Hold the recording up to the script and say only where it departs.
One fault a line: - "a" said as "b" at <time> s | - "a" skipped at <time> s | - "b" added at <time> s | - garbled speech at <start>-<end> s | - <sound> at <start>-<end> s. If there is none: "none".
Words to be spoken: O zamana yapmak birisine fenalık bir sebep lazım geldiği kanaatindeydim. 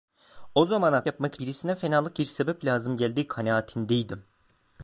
none